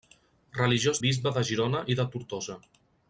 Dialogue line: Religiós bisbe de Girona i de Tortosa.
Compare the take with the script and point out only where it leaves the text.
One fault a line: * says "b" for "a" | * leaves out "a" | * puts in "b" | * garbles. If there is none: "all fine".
all fine